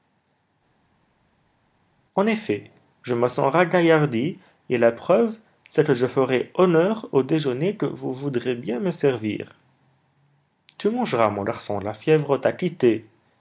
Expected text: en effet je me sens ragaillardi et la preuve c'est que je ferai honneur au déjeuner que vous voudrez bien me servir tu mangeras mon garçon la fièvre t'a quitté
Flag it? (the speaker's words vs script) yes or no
no